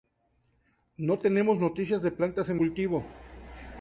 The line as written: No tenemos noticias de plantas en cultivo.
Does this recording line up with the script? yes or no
yes